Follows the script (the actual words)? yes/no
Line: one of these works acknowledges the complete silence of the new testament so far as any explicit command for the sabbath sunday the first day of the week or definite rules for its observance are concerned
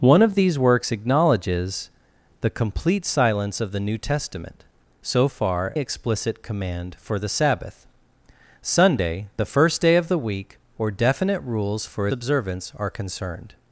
no